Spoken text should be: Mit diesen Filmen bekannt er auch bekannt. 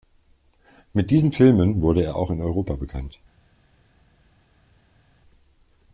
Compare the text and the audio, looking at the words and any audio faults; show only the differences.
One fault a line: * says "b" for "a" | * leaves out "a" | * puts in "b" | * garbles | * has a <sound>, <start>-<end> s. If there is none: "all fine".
* says "wurde" for "bekannt"
* puts in "in Europa"